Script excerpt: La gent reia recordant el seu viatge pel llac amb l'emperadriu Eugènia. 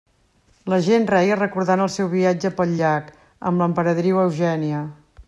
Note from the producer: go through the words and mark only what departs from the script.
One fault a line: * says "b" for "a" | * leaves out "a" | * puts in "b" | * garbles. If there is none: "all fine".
all fine